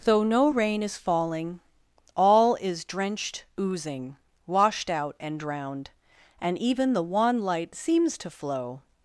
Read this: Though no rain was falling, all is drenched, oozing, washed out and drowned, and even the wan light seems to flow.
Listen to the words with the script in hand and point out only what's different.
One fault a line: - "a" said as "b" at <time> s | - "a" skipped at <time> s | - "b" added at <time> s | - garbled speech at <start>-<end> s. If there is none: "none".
- "was" said as "is" at 0.8 s